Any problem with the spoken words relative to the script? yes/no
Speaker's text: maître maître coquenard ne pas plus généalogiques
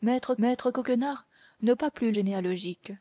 no